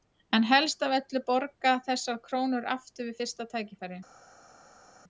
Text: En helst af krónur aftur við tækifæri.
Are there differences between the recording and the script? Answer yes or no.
yes